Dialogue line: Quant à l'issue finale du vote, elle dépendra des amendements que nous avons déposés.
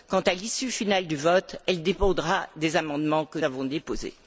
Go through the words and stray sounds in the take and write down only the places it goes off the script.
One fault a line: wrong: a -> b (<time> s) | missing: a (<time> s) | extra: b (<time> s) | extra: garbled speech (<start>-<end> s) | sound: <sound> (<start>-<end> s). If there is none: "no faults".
missing: nous (3.4 s)